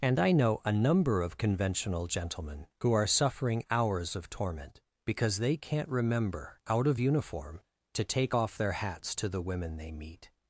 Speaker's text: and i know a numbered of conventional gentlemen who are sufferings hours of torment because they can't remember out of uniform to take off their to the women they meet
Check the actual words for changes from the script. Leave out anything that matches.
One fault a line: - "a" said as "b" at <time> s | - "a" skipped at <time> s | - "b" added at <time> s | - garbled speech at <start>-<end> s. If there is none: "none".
- "numbered" said as "number" at 0.7 s
- "sufferings" said as "suffering" at 3.0 s
- "hats" added at 8.7 s